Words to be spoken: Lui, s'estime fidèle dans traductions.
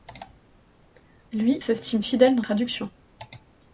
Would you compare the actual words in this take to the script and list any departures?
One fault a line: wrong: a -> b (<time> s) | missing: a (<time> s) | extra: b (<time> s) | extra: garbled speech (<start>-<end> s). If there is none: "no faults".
no faults